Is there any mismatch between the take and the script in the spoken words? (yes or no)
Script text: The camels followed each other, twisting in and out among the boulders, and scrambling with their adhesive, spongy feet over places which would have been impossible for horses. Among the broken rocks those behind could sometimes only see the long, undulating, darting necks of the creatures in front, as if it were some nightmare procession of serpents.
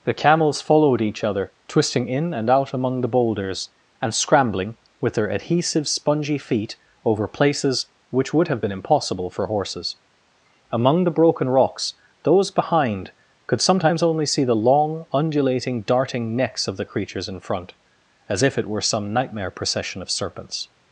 no